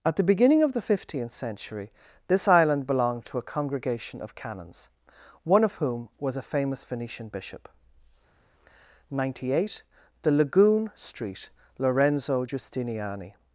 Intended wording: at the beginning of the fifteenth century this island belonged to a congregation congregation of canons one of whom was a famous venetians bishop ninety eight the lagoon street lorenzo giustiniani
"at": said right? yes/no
yes